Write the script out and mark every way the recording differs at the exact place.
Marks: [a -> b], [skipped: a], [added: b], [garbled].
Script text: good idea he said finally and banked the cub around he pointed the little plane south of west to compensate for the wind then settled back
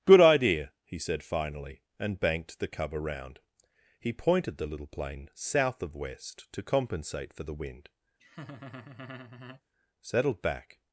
good idea he said finally and banked the cub around he pointed the little plane south of west to compensate for the wind [skipped: then] settled back